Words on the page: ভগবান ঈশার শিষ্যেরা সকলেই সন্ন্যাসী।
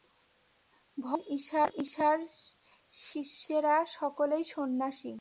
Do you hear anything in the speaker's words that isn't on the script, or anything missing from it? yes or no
no